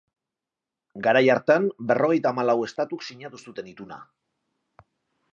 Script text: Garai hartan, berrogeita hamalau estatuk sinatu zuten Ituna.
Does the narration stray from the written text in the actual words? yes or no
no